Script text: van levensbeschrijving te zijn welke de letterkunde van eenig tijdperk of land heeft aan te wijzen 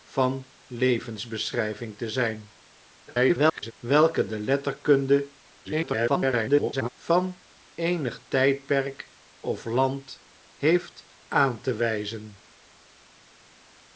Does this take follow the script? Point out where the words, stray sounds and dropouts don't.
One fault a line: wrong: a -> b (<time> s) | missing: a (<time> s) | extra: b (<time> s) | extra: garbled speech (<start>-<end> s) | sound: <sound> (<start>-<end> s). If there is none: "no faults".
extra: garbled speech (3.1-3.7 s)
extra: garbled speech (5.6-6.9 s)